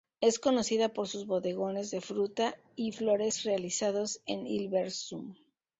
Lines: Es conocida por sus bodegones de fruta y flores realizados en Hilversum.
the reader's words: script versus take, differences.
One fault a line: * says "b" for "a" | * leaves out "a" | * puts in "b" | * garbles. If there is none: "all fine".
all fine